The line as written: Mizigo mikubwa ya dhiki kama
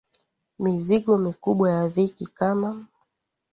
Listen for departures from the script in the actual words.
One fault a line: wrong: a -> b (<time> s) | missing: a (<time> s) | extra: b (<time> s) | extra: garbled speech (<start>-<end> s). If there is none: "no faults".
no faults